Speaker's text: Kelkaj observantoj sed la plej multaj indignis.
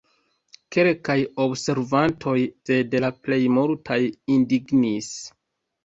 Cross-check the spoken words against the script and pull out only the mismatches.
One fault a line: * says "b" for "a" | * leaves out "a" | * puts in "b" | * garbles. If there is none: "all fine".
all fine